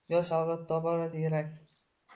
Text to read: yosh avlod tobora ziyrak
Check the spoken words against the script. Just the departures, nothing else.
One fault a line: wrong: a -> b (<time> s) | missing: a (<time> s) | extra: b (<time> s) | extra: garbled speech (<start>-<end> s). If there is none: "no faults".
no faults